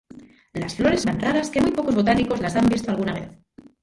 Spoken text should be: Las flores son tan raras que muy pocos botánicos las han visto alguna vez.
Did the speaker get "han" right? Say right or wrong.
right